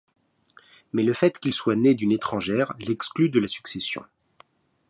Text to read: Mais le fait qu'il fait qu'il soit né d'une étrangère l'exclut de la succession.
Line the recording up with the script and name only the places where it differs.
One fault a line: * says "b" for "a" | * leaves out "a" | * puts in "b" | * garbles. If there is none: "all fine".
* leaves out "fait qu'il"